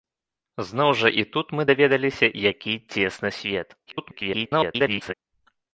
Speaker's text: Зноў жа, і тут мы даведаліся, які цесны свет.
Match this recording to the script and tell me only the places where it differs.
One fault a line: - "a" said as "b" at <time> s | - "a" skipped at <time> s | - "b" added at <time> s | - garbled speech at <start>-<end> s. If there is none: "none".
- garbled speech at 3.9-5.1 s